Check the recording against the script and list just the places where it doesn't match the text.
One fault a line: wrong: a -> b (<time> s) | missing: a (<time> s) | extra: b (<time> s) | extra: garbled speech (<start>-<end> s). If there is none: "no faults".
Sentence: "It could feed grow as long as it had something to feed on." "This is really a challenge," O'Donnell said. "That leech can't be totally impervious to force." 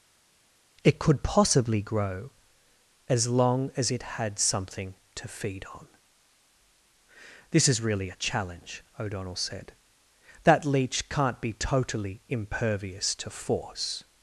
wrong: feed -> possibly (1.2 s)